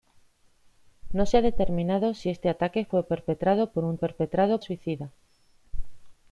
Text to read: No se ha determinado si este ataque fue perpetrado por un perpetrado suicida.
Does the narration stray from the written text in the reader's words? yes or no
no